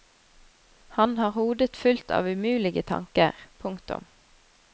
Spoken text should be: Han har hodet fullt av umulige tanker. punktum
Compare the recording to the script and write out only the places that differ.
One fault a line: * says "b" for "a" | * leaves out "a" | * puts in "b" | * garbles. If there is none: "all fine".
all fine